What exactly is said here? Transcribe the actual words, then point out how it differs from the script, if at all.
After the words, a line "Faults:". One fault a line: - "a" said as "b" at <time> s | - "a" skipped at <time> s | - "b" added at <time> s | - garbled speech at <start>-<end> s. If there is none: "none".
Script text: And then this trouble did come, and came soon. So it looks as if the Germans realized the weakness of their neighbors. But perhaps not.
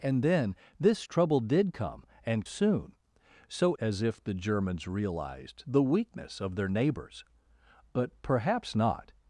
And then this trouble did come, and soon. So as if the Germans realized the weakness of their neighbors. But perhaps not.
Faults:
- "came" skipped at 2.4 s
- "it looks" skipped at 3.7 s